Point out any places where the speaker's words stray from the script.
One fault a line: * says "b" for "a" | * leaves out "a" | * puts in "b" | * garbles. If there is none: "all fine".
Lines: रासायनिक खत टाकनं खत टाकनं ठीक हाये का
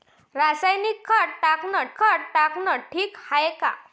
all fine